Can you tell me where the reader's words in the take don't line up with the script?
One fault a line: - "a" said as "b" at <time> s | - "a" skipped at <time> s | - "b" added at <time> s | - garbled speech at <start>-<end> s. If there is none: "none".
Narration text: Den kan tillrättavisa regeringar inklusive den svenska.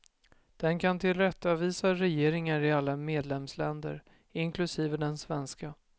- "i alla medlemsländer" added at 2.6 s